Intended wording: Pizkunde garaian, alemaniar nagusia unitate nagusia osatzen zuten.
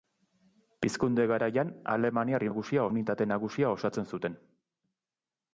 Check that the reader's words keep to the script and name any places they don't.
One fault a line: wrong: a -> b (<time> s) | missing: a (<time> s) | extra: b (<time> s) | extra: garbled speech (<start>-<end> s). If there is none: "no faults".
no faults